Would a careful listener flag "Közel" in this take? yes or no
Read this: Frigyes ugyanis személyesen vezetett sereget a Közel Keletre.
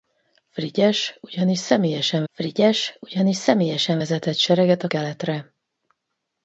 yes